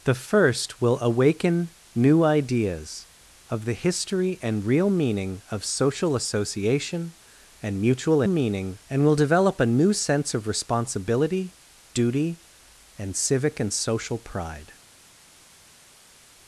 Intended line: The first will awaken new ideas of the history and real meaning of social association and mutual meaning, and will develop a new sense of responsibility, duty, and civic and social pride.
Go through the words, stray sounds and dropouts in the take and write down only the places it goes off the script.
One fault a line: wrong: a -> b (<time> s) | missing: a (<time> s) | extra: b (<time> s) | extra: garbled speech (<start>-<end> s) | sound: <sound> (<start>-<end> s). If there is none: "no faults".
no faults